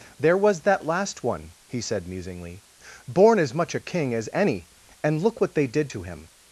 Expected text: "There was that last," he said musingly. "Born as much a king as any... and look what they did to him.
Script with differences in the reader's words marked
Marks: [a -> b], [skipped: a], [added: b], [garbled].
"There was that last," [added: one] he said musingly. "Born as much a king as any... and look what they did to him.